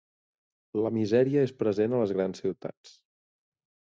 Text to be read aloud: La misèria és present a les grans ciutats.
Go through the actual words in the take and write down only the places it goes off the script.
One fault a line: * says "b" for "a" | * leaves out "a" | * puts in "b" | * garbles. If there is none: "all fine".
all fine